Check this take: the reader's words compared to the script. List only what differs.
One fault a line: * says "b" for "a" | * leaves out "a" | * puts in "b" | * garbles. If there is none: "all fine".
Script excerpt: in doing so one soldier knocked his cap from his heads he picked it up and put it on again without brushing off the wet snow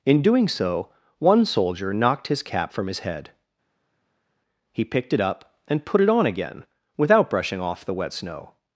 * says "head" for "heads"